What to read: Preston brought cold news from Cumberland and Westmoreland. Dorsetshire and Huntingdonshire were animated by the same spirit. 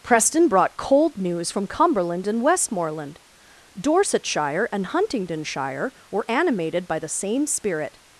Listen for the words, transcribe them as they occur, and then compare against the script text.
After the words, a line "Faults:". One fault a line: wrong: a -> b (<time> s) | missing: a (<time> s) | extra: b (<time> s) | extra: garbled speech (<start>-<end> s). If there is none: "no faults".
Preston brought cold news from Cumberland and Westmoreland. Dorsetshire and Huntingdonshire were animated by the same spirit.
Faults:
no faults